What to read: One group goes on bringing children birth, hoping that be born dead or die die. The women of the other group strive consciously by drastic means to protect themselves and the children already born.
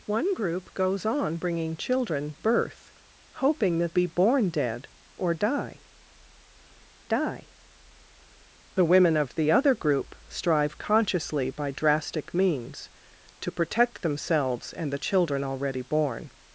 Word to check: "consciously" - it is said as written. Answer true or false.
true